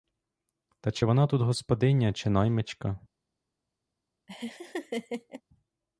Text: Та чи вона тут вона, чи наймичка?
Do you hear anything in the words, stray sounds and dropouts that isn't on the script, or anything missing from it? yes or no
yes